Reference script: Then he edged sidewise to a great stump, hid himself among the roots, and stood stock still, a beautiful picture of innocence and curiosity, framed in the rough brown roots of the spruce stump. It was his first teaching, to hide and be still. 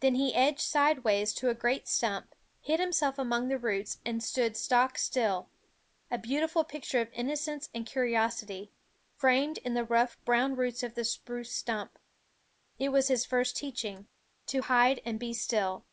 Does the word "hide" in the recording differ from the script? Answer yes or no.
no